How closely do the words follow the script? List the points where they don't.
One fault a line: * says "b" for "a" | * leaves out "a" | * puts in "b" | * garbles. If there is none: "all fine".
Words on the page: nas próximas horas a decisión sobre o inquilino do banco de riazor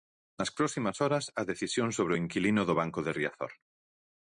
all fine